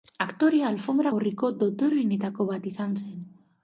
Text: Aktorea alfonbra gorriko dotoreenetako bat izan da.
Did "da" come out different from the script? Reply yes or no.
yes